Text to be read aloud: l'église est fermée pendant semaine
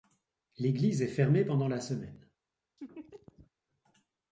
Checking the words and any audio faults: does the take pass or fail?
fail